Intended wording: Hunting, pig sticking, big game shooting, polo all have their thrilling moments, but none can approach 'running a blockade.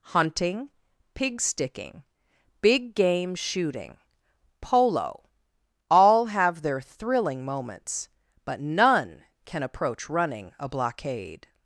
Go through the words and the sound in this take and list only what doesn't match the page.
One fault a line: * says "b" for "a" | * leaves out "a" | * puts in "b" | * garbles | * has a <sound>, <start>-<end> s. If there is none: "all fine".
all fine